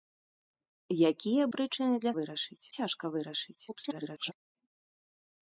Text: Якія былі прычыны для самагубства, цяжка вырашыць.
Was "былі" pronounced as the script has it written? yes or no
no